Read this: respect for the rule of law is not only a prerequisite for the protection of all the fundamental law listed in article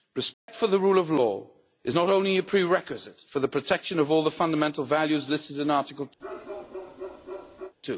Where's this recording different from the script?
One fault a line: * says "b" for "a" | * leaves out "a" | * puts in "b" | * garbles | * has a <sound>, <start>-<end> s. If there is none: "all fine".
* has a dropout, 0.3-0.5 s
* says "values" for "law"
* has a bark, 6.2-7.7 s